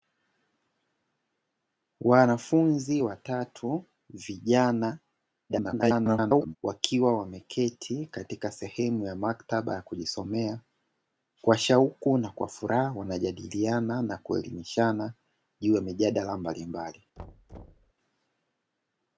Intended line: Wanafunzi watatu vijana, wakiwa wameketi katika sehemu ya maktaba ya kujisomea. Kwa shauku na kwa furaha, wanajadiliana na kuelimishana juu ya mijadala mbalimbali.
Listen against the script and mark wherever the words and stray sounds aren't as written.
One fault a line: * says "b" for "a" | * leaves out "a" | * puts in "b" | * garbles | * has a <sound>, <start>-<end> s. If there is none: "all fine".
* garbles
* has a thud, 17.2-17.9 s